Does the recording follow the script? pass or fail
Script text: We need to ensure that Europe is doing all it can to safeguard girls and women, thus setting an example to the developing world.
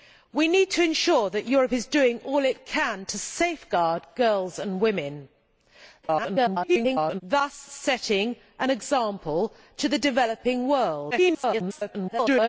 fail